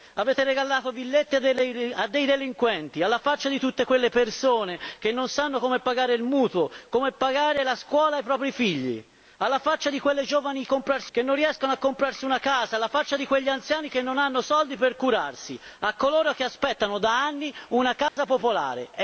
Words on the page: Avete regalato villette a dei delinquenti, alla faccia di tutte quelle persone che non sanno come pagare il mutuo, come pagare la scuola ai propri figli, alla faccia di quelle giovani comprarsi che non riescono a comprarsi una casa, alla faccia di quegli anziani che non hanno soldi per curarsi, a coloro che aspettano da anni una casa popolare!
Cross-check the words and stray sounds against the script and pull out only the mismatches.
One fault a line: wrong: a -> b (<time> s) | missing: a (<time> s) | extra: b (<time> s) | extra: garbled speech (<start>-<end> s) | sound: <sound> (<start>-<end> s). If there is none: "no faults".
sound: dropout (18.1-18.2 s)